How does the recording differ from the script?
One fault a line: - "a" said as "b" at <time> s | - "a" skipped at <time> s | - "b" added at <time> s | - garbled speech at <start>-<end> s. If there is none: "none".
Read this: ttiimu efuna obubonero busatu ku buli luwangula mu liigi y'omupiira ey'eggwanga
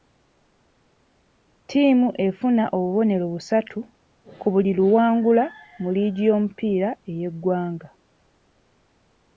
none